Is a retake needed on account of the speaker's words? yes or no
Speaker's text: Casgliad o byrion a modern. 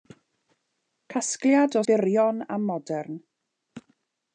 no